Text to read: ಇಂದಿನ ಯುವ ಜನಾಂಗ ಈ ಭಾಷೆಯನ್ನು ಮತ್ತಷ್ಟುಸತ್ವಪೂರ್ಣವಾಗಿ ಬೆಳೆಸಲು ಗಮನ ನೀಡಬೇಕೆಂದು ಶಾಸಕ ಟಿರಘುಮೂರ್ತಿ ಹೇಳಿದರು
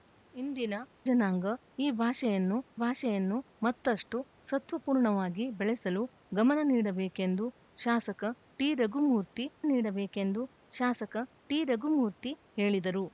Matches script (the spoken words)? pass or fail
fail